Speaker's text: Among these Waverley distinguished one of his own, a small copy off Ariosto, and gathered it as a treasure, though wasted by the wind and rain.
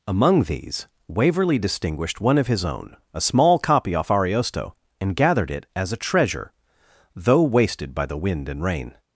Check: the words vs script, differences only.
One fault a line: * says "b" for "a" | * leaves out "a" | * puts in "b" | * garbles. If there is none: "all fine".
all fine